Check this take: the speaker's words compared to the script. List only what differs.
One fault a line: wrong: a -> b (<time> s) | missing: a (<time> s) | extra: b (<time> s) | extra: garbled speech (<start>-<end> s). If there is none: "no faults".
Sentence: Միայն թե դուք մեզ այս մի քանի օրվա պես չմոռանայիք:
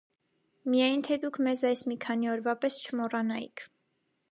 no faults